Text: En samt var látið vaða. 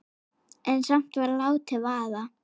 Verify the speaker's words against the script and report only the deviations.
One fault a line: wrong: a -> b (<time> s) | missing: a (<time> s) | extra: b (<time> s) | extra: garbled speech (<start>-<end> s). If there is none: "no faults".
no faults